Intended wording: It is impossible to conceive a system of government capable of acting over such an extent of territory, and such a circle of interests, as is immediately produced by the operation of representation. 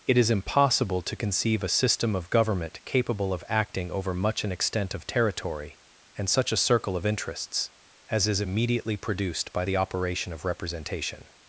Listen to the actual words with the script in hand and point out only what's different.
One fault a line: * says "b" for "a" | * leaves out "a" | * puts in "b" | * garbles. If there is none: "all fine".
* says "much" for "such"